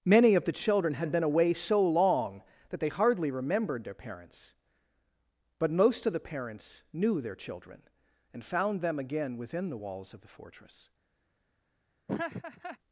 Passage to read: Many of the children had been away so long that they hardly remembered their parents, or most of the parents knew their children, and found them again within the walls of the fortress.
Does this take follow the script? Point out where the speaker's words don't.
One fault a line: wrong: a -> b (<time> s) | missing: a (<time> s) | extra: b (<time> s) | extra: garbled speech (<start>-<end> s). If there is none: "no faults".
wrong: or -> but (5.6 s)